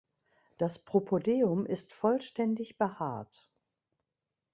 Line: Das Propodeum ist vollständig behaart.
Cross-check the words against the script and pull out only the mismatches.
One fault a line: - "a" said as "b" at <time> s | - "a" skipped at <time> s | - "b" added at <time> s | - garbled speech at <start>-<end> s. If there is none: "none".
none